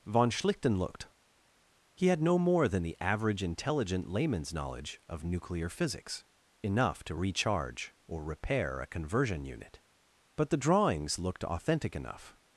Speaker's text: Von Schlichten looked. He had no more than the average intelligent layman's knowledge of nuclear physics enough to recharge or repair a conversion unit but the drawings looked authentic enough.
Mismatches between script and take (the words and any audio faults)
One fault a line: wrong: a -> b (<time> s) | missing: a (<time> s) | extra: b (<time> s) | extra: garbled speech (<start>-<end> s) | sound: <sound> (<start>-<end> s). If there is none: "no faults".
no faults